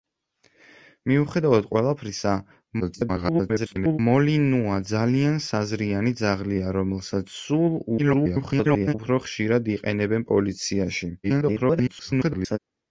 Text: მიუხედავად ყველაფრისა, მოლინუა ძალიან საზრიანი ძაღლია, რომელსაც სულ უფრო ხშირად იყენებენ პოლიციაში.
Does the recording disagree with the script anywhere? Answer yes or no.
yes